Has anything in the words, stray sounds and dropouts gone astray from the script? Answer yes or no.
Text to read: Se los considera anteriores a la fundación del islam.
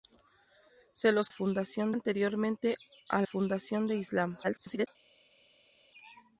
yes